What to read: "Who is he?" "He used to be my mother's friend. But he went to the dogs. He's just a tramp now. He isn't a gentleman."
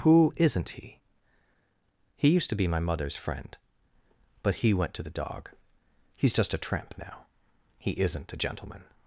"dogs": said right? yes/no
no